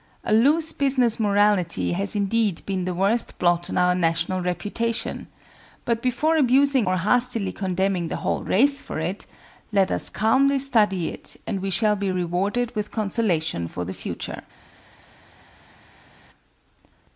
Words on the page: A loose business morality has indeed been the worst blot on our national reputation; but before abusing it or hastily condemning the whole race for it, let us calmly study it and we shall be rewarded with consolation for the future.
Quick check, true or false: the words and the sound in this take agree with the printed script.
false